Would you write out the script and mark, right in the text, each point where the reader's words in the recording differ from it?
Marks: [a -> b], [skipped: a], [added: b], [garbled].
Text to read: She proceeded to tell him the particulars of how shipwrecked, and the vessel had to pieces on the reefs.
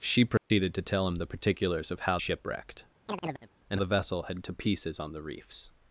She proceeded to tell him the particulars of how shipwrecked, and the vessel had to pieces on the reefs.